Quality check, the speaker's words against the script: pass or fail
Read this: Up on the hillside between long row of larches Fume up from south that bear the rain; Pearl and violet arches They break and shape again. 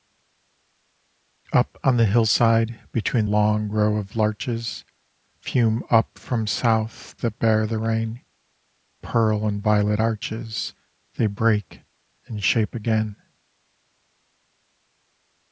pass